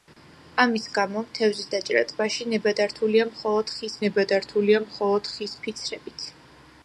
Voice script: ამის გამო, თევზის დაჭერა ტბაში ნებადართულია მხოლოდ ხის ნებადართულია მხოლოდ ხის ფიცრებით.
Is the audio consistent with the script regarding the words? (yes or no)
yes